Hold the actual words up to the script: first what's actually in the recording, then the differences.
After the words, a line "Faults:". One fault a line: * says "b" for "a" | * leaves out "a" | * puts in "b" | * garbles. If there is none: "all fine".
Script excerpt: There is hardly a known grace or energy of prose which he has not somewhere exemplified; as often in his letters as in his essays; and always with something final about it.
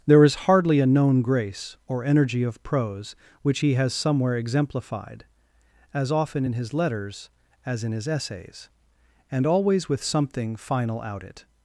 There is hardly a known grace or energy of prose which he has somewhere exemplified; as often in his letters as in his essays; and always with something final out it.
Faults:
* leaves out "not"
* says "out" for "about"